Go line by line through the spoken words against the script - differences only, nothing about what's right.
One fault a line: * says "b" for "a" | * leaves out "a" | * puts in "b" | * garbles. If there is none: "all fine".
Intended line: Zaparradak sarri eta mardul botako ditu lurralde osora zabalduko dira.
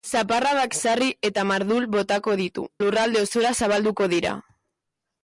all fine